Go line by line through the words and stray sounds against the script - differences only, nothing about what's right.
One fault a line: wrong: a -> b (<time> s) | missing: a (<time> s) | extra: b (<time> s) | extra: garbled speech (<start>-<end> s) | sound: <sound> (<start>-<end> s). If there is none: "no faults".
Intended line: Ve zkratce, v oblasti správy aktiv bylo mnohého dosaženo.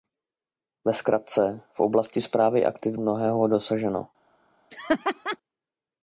missing: bylo (3.0 s)
sound: laugh (4.7-5.4 s)